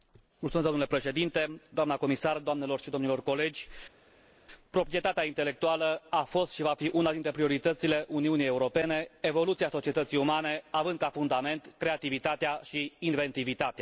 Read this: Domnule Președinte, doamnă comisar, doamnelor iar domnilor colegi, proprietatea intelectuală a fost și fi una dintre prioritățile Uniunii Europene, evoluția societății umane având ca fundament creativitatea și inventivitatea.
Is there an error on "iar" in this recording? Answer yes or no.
yes